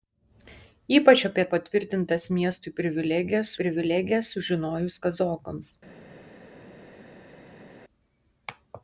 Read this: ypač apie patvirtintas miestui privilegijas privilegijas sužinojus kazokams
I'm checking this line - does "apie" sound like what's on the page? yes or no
yes